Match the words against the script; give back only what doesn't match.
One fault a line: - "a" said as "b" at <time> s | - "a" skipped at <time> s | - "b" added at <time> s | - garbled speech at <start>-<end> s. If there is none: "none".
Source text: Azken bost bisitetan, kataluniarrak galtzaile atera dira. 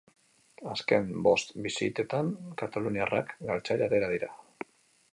none